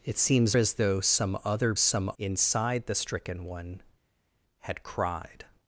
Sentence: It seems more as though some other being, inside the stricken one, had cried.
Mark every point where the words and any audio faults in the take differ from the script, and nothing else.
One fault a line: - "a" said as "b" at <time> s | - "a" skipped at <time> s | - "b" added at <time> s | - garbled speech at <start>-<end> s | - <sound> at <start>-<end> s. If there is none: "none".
- "more" skipped at 0.6 s
- "being" said as "some" at 1.7 s